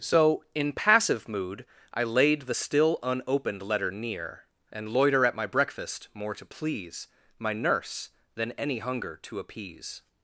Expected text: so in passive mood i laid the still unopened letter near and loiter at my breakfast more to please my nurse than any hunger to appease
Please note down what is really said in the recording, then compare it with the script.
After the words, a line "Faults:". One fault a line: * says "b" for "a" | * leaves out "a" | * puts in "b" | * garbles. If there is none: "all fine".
so in passive mood i laid the still unopened letter near and loiter at my breakfast more to please my nurse than any hunger to appease
Faults:
all fine